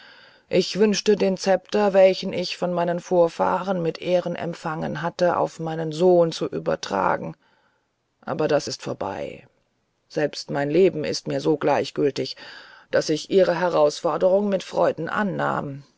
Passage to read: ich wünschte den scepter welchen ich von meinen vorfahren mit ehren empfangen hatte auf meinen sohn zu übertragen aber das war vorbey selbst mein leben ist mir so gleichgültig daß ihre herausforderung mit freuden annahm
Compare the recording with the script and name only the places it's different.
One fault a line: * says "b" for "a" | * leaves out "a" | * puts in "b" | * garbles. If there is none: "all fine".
* says "ist" for "war"
* puts in "ich"